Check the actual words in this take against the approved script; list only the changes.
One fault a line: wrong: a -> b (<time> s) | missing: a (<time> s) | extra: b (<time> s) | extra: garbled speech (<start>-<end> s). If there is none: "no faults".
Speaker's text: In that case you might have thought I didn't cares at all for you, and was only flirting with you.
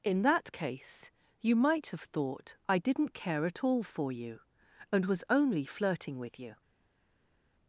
wrong: cares -> care (3.1 s)